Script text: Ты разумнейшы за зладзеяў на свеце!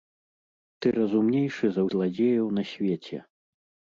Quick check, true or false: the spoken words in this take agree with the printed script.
true